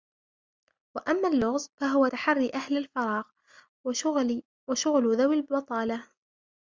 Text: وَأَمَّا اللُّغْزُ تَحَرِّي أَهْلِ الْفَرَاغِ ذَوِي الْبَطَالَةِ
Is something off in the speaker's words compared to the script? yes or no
yes